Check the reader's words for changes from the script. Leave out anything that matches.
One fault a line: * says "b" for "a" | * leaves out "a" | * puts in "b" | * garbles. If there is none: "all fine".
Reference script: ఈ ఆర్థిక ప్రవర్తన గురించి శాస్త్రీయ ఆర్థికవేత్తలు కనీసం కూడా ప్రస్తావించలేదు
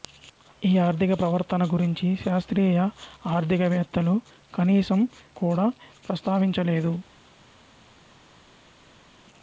all fine